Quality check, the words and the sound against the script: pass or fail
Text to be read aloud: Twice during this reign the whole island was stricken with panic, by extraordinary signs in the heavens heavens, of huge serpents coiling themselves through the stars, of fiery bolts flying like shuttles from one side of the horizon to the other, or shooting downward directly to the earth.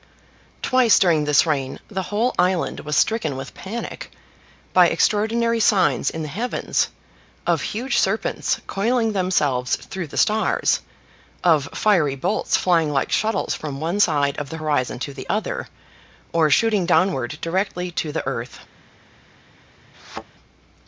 fail